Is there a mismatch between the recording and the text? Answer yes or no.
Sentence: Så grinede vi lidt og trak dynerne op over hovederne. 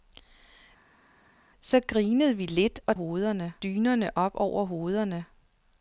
yes